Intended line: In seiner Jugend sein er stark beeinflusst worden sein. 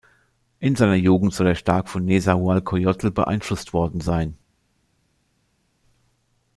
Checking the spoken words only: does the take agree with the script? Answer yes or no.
no